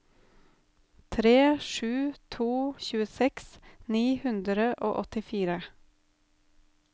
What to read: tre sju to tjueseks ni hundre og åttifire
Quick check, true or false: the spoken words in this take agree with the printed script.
true